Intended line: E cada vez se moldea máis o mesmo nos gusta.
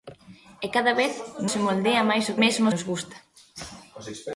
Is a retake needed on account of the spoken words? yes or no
no